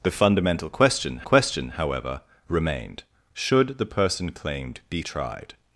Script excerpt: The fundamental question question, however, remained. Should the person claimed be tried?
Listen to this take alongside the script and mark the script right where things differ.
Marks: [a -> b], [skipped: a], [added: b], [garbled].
The fundamental question question, however, remained. Should the person claimed be tried?